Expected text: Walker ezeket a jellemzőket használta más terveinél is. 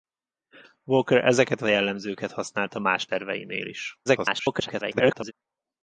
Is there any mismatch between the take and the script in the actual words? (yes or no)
yes